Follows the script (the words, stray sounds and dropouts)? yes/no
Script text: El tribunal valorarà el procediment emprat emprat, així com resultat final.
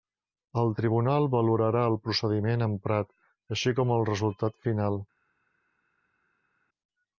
no